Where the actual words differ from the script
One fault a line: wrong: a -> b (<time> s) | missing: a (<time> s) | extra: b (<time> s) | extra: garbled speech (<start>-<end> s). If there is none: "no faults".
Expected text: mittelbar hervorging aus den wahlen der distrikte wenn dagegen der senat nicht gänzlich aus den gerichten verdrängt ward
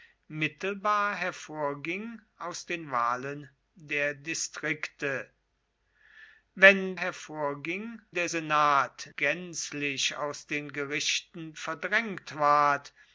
wrong: dagegen -> hervorging (7.0 s)
missing: nicht (9.1 s)